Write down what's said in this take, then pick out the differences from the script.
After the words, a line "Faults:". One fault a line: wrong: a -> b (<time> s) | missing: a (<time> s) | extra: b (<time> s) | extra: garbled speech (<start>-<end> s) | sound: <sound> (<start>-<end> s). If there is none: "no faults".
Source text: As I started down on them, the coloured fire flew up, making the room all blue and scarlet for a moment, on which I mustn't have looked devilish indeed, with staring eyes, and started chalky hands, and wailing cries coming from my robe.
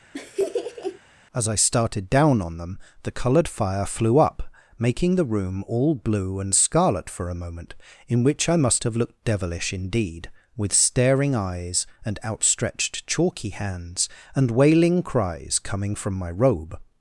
As I started down on them, the coloured fire flew up, making the room all blue and scarlet for a moment, in which I must have looked devilish indeed, with staring eyes, and outstretched chalky hands, and wailing cries coming from my robe.
Faults:
sound: laugh (0.1-1.0 s)
wrong: on -> in (8.1 s)
wrong: mustn't -> must (8.6 s)
wrong: started -> outstretched (12.2 s)